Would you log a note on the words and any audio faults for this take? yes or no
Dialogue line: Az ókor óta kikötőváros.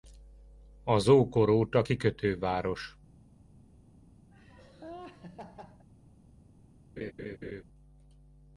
yes